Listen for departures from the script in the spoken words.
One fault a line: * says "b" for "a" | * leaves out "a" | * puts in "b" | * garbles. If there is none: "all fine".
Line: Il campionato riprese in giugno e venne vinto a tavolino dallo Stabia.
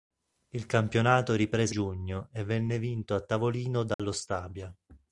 * leaves out "in"